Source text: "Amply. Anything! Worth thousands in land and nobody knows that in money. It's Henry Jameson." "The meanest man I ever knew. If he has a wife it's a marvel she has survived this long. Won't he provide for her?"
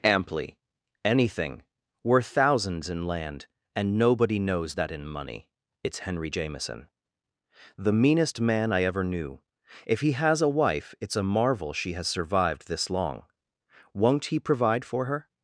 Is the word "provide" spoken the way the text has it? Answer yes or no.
yes